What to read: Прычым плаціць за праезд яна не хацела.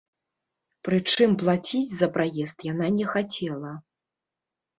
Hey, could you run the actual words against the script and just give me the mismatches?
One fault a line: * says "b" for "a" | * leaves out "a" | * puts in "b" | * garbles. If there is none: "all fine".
all fine